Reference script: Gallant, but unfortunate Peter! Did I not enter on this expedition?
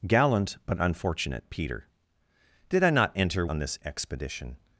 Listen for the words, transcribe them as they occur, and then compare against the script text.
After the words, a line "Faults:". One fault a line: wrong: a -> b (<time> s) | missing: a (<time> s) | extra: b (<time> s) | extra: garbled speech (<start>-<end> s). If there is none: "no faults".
Gallant, but unfortunate Peter! Did I not enter on this expedition?
Faults:
no faults